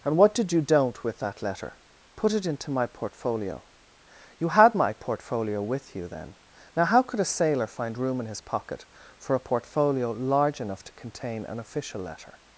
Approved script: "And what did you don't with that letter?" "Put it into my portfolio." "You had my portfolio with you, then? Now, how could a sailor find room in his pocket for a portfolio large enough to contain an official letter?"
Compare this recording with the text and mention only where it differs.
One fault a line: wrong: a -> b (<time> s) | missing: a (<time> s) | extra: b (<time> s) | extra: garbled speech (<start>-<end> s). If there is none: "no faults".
no faults